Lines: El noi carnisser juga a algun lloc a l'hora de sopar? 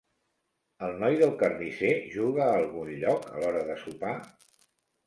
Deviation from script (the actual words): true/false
true